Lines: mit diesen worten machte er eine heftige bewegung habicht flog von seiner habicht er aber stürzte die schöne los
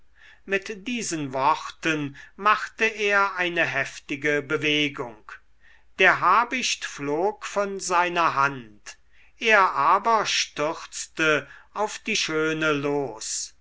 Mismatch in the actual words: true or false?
true